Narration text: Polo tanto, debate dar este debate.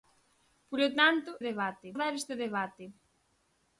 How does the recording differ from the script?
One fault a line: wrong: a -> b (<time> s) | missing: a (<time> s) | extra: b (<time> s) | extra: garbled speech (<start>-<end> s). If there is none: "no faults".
no faults